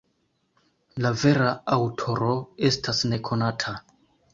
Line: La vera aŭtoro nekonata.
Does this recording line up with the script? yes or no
no